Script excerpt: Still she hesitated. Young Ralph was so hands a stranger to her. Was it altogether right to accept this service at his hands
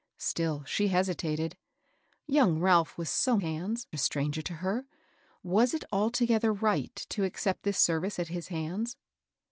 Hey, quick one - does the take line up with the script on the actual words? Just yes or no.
yes